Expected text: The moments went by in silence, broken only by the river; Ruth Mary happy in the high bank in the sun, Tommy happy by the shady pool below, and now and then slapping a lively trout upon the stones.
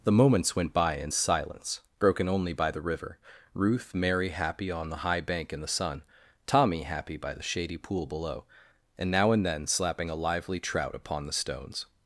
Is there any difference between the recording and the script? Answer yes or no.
yes